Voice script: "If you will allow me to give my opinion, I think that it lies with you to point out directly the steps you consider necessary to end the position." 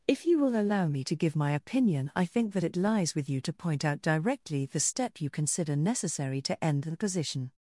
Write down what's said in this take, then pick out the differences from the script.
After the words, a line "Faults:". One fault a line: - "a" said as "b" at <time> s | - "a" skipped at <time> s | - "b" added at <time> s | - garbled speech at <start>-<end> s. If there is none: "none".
"If you will allow me to give my opinion, I think that it lies with you to point out directly the step you consider necessary to end the position."
Faults:
- "steps" said as "step" at 4.8 s